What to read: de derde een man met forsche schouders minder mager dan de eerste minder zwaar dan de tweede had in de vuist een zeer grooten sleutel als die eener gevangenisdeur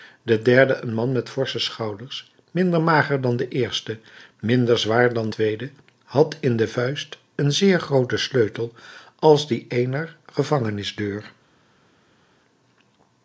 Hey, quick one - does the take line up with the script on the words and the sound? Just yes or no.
no